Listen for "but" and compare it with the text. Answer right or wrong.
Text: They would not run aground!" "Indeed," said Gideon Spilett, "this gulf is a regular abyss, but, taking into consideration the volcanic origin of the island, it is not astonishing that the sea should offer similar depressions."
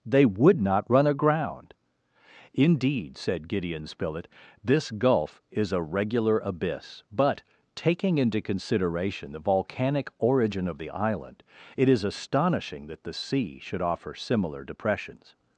right